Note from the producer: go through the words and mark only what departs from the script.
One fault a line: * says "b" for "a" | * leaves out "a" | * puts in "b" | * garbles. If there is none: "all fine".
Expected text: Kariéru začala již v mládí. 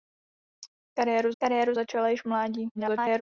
* puts in "kariéru"
* garbles